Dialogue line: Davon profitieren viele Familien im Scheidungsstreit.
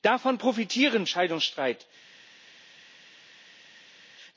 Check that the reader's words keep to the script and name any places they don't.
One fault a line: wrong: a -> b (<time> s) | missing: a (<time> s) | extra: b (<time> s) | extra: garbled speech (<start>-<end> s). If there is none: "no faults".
missing: viele Familien im (1.1 s)